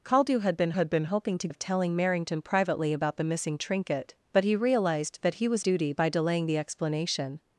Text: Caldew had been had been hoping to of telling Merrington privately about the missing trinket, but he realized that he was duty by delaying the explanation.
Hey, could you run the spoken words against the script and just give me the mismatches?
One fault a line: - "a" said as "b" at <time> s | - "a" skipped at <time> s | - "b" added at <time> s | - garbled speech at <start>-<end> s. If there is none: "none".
none